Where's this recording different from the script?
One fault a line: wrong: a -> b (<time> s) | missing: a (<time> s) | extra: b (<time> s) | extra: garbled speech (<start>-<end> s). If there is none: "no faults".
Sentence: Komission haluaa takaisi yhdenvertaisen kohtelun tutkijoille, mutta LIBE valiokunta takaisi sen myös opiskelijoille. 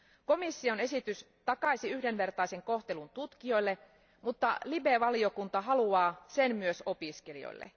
wrong: haluaa -> esitys (0.8 s)
wrong: takaisi -> haluaa (5.6 s)